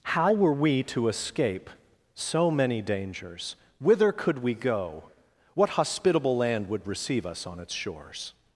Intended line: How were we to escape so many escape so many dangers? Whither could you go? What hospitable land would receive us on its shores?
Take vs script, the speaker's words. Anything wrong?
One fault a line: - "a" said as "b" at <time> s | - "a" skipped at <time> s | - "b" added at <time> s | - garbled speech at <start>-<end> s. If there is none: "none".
- "escape so many" skipped at 2.8 s
- "you" said as "we" at 4.4 s